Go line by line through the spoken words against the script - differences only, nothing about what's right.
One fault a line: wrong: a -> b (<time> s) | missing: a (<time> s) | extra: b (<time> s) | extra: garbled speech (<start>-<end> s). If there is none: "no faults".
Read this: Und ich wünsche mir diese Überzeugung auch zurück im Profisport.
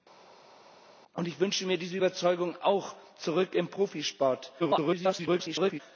extra: garbled speech (4.6-5.8 s)